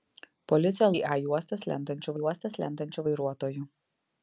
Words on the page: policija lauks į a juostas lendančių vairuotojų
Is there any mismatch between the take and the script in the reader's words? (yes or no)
yes